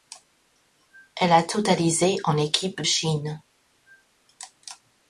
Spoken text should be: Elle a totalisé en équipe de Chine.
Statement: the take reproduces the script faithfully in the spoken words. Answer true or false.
false